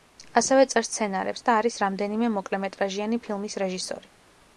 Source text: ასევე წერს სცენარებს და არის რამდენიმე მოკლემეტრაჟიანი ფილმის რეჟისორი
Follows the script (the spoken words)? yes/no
yes